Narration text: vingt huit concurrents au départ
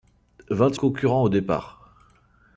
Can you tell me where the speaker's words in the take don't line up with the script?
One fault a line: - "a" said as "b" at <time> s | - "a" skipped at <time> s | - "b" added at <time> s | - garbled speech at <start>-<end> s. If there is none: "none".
- "huit" skipped at 0.8 s